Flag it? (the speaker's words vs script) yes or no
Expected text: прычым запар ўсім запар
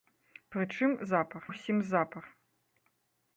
no